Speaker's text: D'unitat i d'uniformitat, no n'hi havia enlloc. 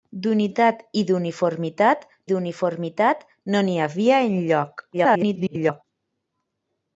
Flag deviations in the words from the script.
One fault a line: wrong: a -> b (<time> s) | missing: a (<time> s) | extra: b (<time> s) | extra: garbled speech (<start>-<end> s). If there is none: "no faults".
extra: d'uniformitat (2.3 s)
extra: garbled speech (4.9-5.8 s)